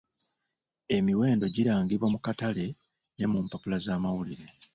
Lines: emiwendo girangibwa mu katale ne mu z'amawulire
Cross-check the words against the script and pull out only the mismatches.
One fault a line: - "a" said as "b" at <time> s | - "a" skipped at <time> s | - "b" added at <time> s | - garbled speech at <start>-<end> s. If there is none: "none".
- "mpapula" added at 3.5 s